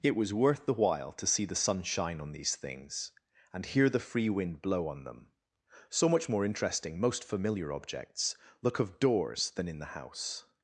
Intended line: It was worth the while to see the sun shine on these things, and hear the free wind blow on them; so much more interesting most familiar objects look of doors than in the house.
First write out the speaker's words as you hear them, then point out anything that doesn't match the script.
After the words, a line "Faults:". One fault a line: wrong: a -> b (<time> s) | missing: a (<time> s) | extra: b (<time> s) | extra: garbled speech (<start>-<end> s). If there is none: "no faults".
It was worth the while to see the sun shine on these things, and hear the free wind blow on them; so much more interesting most familiar objects look of doors than in the house.
Faults:
no faults